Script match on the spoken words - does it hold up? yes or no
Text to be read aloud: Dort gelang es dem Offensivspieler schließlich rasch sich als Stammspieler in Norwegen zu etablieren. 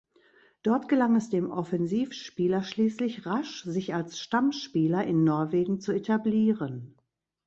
yes